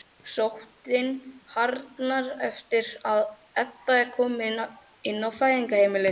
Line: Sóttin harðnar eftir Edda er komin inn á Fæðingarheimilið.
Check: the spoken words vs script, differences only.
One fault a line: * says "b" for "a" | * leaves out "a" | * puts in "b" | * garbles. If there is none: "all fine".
* puts in "að"